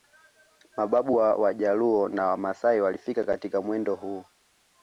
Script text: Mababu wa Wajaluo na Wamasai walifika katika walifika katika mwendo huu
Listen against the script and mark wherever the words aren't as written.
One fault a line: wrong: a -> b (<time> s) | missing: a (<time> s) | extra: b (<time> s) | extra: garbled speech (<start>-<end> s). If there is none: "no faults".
missing: walifika katika (3.6 s)